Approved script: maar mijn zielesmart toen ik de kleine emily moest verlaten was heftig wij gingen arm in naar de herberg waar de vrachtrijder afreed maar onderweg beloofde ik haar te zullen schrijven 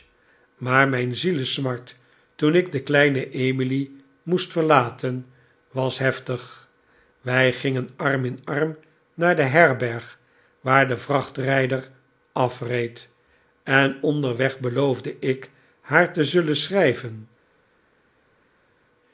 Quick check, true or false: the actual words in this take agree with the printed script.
false